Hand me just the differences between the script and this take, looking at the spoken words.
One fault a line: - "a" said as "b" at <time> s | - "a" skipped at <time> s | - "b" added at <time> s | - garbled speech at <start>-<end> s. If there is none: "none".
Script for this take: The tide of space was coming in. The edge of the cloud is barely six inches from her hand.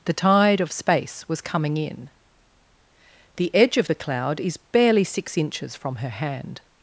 none